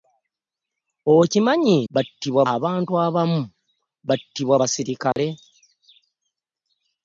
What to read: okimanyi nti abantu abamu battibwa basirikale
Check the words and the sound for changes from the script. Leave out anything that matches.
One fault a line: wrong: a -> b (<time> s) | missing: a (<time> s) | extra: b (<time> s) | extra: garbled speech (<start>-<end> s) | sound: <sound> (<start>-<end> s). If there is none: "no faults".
wrong: nti -> battibwa (1.9 s)
sound: dropout (5.1-5.2 s)